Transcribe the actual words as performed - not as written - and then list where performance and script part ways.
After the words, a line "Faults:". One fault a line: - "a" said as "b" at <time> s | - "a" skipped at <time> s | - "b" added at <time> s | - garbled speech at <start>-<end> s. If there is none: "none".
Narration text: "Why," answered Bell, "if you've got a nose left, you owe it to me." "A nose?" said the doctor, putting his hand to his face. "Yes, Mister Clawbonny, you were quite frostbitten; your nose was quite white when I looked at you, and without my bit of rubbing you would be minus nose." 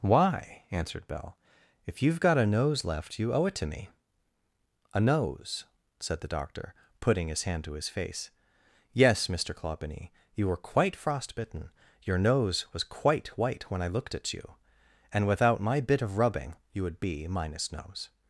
"Why," answered Bell, "if you've got a nose left, you owe it to me." "A nose?" said the doctor, putting his hand to his face. "Yes, Mister Clawbonny, you were quite frostbitten; your nose was quite white when I looked at you, and without my bit of rubbing you would be minus nose."
Faults:
none